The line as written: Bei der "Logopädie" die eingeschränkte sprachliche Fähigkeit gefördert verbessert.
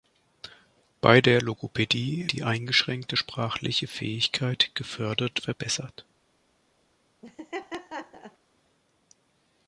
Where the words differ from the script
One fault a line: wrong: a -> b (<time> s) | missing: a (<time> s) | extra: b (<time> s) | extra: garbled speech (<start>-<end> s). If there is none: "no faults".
no faults